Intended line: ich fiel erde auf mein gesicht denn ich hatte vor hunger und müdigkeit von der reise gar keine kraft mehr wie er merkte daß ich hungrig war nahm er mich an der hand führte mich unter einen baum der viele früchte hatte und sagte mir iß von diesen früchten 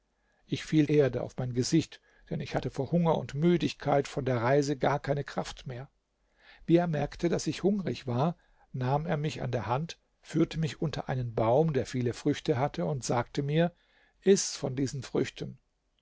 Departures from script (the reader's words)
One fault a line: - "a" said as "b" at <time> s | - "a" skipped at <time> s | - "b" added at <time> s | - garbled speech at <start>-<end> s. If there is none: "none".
none